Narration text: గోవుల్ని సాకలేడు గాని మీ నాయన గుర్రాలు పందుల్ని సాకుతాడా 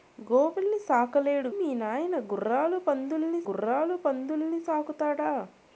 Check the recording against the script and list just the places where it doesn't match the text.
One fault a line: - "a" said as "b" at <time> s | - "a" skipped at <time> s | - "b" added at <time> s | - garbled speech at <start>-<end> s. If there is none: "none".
- "గాని" skipped at 1.5 s
- "గుర్రాలు పందుల్ని" added at 3.5 s